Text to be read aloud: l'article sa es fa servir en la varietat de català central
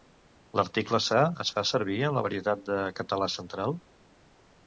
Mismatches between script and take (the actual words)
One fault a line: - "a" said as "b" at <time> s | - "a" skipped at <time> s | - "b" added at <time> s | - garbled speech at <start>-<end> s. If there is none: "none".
none